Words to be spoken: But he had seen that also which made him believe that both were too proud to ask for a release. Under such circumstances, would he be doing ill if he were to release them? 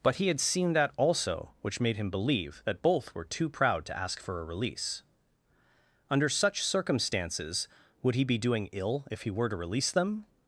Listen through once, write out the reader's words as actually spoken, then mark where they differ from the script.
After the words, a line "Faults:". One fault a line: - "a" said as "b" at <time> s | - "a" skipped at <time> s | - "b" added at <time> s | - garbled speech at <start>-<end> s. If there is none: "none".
But he had seen that also which made him believe that both were too proud to ask for a release. Under such circumstances, would he be doing ill if he were to release them?
Faults:
none